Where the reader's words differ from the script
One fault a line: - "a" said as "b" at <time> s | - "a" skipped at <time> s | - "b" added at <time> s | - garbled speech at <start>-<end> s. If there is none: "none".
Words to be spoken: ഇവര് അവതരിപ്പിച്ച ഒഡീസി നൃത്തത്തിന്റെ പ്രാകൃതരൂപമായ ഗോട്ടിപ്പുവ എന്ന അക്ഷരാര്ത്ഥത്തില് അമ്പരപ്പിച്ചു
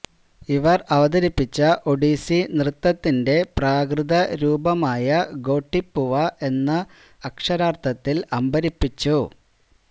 none